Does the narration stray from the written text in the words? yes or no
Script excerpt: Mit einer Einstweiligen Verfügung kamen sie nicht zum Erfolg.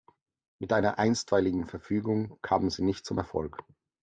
no